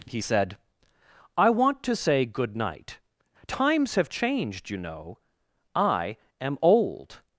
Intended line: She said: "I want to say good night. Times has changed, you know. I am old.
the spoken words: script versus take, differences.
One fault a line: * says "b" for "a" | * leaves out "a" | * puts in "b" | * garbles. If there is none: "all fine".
* says "He" for "She"
* says "have" for "has"